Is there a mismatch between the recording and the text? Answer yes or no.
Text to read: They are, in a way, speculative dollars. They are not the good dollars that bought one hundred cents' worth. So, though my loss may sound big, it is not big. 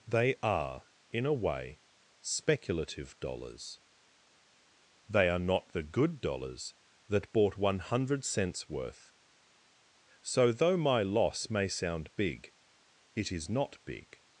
no